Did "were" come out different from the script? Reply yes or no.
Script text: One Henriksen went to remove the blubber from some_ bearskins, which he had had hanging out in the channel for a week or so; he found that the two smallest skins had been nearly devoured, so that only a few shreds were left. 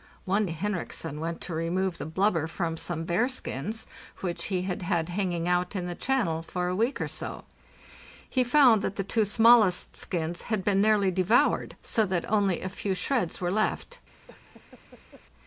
no